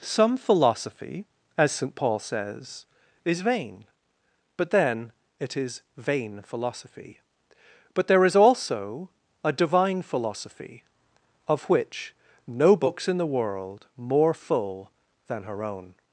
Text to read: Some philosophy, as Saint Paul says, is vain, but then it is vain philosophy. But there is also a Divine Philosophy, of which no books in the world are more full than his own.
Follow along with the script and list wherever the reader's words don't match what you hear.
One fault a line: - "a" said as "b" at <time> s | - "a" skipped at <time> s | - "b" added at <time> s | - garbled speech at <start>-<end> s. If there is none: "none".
- "are" skipped at 13.8 s
- "his" said as "her" at 15.4 s